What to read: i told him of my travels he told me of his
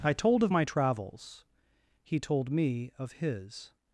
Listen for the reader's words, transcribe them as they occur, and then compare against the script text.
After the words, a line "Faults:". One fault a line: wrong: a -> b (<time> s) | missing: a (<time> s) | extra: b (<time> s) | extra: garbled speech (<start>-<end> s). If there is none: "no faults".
i told of my travels he told me of his
Faults:
missing: him (0.4 s)